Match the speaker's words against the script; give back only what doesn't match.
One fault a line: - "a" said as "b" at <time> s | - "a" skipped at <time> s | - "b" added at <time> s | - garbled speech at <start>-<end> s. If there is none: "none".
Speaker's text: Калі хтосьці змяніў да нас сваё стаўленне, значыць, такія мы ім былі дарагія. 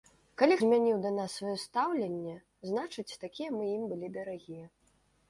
- "хтосьці" skipped at 0.6 s